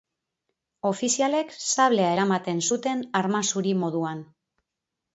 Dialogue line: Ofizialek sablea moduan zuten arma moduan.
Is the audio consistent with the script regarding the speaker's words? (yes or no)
no